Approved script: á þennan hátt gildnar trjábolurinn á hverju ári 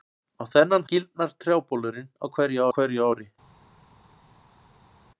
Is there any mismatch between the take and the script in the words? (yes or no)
yes